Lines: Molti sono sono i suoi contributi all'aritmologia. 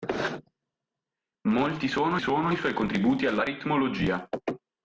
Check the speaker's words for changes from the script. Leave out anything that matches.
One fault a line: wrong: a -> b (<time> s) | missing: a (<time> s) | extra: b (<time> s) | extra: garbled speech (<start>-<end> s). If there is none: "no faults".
no faults